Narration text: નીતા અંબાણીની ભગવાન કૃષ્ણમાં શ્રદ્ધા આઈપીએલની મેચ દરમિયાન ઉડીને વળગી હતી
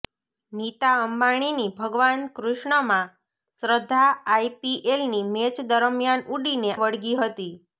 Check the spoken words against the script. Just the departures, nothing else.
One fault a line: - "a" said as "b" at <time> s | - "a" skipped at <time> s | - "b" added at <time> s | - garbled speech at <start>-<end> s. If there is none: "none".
none